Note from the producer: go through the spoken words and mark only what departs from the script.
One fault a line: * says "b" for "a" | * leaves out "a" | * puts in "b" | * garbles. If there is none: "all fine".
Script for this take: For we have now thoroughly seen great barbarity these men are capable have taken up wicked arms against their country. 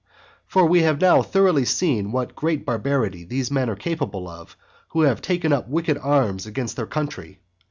* puts in "what"
* puts in "of who"